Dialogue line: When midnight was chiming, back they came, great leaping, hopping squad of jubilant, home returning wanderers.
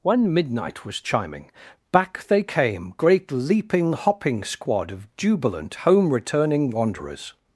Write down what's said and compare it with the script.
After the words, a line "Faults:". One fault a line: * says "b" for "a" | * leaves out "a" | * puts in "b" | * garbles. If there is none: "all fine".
When midnight was chiming, back they came, great leaping, hopping squad of jubilant, home returning wanderers.
Faults:
all fine